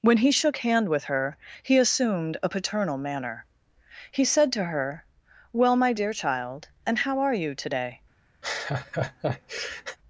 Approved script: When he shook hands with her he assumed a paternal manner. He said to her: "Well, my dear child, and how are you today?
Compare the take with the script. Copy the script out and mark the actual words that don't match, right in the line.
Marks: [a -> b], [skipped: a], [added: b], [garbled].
When he shook [hands -> hand] with her he assumed a paternal manner. He said to her: "Well, my dear child, and how are you today?